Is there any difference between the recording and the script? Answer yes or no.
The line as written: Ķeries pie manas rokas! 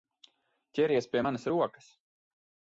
no